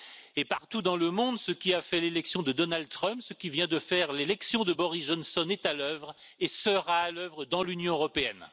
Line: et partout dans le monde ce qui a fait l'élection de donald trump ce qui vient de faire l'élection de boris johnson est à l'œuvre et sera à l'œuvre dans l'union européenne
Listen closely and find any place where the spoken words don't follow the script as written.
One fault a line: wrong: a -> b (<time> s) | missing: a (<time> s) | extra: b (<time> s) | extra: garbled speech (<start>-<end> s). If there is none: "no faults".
no faults